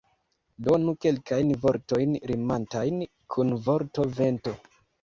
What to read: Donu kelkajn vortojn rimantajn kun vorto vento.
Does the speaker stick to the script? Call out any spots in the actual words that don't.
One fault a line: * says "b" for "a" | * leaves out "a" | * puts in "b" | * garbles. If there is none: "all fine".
all fine